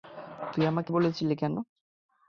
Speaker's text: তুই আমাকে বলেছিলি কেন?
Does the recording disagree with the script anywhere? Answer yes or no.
no